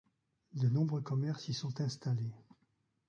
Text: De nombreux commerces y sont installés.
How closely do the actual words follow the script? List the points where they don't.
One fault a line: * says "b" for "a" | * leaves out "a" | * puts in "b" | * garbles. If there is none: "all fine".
all fine